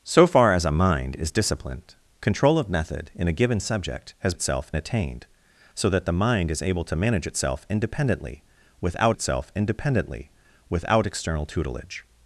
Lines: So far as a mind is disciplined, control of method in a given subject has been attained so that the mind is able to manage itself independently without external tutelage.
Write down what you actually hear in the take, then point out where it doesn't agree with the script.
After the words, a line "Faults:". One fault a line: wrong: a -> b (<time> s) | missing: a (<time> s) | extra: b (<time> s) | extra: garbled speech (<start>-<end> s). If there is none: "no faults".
So far as a mind is disciplined, control of method in a given subject has itself attained so that the mind is able to manage itself independently without itself independently without external tutelage.
Faults:
wrong: been -> itself (4.3 s)
extra: itself independently without (9.1 s)